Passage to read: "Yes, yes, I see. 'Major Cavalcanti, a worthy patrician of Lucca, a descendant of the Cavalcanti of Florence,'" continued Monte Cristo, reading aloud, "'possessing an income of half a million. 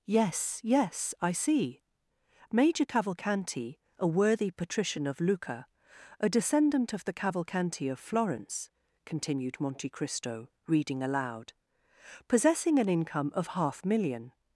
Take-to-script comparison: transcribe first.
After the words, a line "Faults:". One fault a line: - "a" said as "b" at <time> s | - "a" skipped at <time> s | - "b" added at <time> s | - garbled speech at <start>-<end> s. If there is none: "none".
"Yes, yes, I see. 'Major Cavalcanti, a worthy patrician of Lucca, a descendant of the Cavalcanti of Florence,'" continued Monte Cristo, reading aloud, "'possessing an income of half million.
Faults:
- "a" skipped at 13.8 s